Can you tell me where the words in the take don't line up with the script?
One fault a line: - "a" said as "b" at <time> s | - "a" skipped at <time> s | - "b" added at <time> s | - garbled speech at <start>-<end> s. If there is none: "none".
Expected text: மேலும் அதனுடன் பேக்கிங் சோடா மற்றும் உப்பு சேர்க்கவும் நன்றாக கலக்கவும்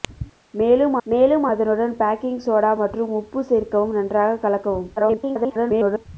- "மேலும்" added at 1.1 s
- garbled speech at 5.0-6.1 s